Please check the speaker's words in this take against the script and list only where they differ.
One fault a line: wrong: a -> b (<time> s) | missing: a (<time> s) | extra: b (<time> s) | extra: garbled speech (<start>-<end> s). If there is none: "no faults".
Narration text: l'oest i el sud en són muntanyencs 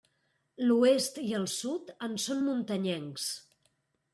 no faults